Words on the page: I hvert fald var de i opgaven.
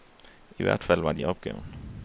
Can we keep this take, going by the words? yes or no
yes